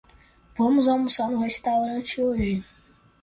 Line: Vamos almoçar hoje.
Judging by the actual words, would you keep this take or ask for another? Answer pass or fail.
fail